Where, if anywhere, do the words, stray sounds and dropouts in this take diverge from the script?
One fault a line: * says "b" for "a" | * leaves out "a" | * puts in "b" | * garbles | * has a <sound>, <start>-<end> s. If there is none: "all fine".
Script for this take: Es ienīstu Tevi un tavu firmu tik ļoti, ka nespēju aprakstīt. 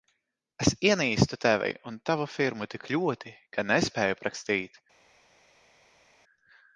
all fine